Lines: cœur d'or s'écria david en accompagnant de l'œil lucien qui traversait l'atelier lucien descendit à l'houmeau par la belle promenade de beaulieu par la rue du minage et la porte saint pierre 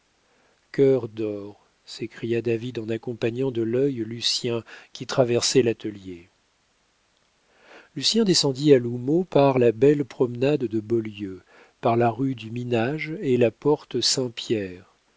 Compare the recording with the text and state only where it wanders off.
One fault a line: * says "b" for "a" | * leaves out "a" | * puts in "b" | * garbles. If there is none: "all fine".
all fine